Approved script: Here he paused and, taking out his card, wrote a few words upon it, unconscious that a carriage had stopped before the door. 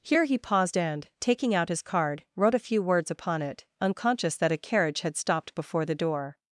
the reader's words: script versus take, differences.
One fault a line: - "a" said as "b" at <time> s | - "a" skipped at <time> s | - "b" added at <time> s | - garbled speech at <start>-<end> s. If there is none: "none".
none